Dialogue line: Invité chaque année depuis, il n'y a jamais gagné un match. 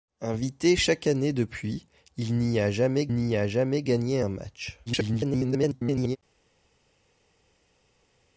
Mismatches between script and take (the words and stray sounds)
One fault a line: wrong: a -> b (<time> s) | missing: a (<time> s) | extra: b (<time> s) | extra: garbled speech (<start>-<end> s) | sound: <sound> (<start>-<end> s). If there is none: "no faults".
extra: n'y a jamais (3.1 s)
extra: garbled speech (4.9-6.2 s)